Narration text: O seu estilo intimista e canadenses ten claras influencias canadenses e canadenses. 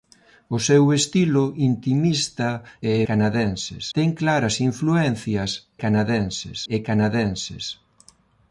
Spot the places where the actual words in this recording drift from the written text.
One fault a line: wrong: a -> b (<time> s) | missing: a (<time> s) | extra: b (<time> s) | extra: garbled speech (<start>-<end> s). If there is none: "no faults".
no faults